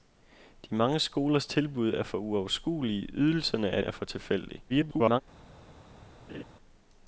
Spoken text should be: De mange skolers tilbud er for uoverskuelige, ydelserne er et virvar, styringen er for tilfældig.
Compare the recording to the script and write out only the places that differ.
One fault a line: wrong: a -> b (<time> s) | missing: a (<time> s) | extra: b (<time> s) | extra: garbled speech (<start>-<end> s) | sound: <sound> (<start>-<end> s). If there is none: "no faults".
missing: et virvar styringen (3.8 s)
extra: garbled speech (4.7-5.2 s)
sound: laugh (6.3-6.4 s)